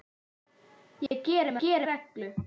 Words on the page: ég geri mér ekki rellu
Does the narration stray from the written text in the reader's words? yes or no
yes